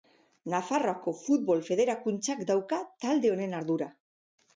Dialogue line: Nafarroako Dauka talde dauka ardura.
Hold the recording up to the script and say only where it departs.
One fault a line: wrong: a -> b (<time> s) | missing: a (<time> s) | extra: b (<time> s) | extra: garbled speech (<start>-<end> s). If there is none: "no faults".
extra: Futbol Federakuntzak (1.2 s)
wrong: dauka -> honen (3.3 s)